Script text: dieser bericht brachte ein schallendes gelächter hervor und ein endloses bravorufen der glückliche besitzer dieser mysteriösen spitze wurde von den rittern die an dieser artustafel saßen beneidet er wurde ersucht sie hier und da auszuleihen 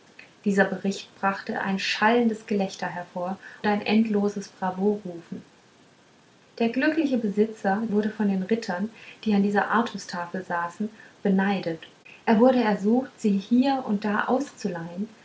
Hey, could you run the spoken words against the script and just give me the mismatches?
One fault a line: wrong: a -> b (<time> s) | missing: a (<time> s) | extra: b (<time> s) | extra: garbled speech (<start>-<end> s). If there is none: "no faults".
missing: und (3.4 s)
missing: dieser mysteriösen spitze (7.8 s)